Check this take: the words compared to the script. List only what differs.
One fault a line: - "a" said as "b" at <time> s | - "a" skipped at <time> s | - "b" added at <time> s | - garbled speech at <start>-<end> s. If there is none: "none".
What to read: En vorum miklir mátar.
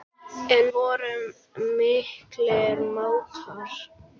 none